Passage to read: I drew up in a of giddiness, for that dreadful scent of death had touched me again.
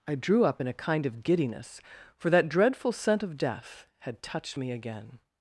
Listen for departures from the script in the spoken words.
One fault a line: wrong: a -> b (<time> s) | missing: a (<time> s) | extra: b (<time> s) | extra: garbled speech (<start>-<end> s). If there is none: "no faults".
extra: kind (0.7 s)